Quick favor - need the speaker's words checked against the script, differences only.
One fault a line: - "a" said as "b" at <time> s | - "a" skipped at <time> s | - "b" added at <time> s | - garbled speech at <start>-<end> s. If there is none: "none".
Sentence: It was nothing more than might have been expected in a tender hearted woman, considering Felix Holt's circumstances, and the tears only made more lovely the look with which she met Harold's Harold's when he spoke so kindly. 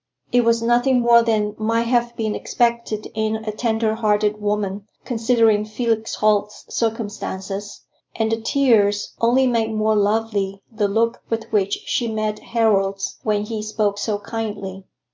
- "Harold's" skipped at 13.2 s